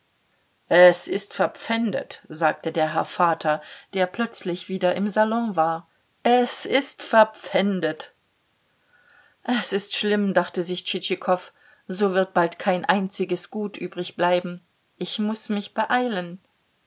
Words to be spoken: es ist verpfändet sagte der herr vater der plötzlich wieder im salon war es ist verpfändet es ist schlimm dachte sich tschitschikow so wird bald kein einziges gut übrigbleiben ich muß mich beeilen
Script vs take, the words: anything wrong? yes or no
no